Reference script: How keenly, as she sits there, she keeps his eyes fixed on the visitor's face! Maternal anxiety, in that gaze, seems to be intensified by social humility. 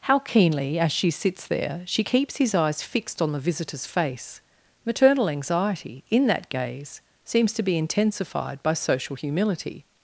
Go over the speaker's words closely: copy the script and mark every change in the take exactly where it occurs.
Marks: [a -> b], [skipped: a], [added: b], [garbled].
How keenly, as she sits there, she keeps his eyes fixed on the visitor's face! Maternal anxiety, in that gaze, seems to be intensified by social humility.